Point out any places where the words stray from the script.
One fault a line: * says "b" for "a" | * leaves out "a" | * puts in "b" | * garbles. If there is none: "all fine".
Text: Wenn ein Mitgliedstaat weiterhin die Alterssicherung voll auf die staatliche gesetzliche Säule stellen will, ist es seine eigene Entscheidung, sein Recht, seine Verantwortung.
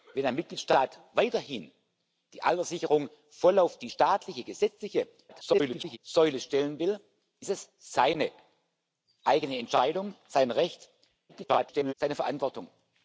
* garbles
* garbles